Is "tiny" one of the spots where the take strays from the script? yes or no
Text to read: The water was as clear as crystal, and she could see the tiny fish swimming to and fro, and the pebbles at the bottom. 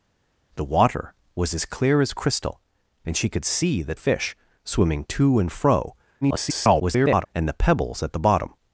yes